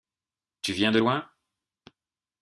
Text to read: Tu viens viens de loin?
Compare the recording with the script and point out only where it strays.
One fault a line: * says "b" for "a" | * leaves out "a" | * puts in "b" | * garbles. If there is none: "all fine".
* leaves out "viens"